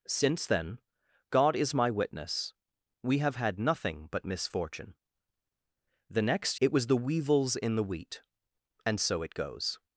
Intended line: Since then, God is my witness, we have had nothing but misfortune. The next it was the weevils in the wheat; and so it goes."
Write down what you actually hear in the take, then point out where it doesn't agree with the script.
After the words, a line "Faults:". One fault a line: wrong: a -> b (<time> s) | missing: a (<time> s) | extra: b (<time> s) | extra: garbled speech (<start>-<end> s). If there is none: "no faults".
Since then, God is my witness, we have had nothing but misfortune. The next it was the weevils in the wheat; and so it goes."
Faults:
no faults